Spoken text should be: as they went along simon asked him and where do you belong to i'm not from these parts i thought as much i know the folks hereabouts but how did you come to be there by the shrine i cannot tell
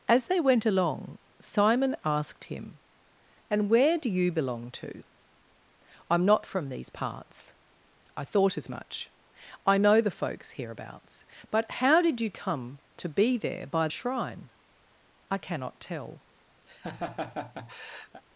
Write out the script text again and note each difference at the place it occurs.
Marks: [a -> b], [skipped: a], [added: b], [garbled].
as they went along simon asked him and where do you belong to i'm not from these parts i thought as much i know the folks hereabouts but how did you come to be there by [skipped: the] shrine i cannot tell